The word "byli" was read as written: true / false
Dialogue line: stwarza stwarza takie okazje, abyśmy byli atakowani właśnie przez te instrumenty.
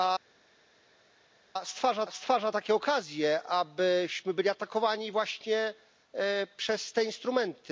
true